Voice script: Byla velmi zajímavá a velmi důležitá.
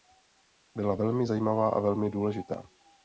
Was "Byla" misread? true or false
false